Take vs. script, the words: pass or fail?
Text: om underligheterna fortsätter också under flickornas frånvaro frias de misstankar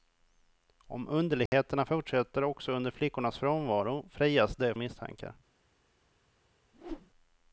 pass